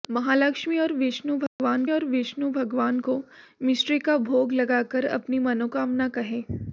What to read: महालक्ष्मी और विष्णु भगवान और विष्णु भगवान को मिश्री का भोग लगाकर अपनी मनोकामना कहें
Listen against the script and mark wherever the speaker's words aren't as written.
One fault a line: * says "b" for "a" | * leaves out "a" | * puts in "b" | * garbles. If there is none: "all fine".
all fine